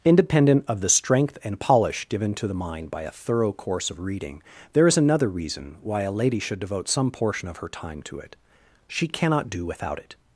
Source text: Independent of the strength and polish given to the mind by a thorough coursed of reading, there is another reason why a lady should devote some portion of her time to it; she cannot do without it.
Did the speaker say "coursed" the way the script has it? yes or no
no